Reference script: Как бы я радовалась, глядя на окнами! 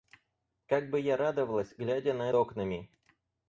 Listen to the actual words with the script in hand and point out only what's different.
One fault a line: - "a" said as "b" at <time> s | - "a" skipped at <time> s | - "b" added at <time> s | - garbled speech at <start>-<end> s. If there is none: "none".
none